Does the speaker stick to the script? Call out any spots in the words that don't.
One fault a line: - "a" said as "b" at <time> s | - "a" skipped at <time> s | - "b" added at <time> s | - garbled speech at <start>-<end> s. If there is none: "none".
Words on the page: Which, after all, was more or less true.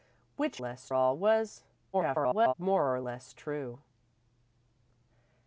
- "after" said as "less" at 0.6 s
- garbled speech at 1.9-2.5 s